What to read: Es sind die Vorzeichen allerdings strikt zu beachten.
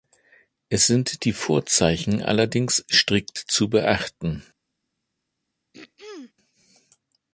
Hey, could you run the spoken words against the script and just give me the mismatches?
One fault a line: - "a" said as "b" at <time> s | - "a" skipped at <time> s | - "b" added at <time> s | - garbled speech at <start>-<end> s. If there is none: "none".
none